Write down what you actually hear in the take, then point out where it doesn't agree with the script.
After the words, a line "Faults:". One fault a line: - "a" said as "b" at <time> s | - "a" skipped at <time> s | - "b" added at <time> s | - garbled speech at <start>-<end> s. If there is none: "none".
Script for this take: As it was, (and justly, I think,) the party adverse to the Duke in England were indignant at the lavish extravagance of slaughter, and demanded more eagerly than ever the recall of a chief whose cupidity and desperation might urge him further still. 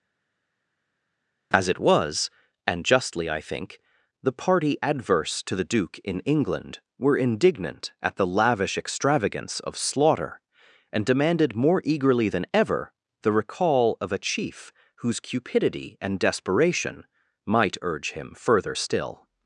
As it was, (and justly, I think,) the party adverse to the Duke in England were indignant at the lavish extravagance of slaughter, and demanded more eagerly than ever the recall of a chief whose cupidity and desperation might urge him further still.
Faults:
none